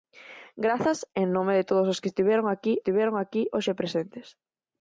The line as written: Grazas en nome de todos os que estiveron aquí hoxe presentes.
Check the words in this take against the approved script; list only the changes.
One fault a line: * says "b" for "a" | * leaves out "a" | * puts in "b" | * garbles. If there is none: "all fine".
* puts in "estiveron aquí"